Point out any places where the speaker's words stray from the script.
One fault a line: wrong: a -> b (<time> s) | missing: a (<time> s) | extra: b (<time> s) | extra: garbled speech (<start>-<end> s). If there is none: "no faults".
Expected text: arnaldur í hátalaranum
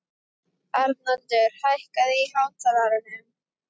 extra: hækkaðu (1.7 s)